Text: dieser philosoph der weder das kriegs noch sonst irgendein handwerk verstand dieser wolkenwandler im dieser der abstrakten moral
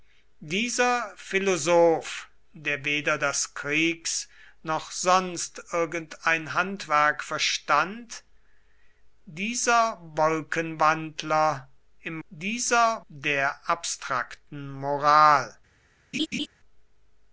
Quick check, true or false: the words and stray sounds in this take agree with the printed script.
false